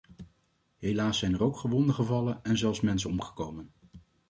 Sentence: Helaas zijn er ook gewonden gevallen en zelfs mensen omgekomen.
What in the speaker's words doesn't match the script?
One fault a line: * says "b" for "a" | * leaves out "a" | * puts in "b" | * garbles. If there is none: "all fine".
all fine